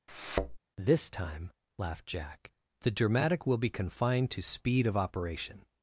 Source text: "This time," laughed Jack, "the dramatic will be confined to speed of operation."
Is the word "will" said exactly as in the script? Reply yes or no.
yes